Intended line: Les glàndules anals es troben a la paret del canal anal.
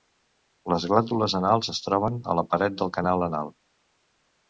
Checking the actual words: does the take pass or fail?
pass